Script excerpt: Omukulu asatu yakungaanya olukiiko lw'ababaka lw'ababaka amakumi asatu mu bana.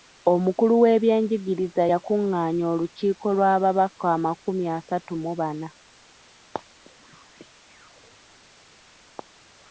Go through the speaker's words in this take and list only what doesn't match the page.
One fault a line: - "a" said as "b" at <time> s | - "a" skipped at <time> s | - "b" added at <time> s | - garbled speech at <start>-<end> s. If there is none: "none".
- "asatu" said as "w'ebyenjigiriza" at 0.8 s
- "lw'ababaka" skipped at 4.0 s